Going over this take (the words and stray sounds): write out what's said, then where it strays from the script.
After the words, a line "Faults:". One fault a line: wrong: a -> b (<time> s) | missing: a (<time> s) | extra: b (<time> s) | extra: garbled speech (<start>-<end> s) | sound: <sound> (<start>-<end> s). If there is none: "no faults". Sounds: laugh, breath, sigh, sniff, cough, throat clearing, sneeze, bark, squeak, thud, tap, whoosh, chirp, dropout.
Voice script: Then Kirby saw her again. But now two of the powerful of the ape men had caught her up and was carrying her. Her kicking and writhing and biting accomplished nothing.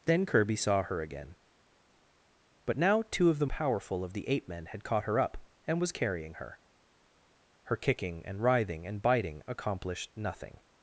Then Kirby saw her again. But now two of the powerful of the ape men had caught her up and was carrying her. Her kicking and writhing and biting accomplished nothing.
Faults:
no faults